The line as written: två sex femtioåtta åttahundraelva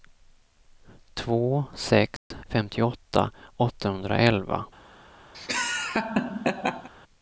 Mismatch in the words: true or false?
false